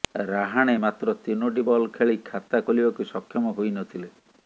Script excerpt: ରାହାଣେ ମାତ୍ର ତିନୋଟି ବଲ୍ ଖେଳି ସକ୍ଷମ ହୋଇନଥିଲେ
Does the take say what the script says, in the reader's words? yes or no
no